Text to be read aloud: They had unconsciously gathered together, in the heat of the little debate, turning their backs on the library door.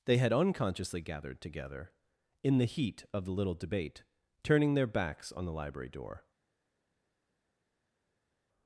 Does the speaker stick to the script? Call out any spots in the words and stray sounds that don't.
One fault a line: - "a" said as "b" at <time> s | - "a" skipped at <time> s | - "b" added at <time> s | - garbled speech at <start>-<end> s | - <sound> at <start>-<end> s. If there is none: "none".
none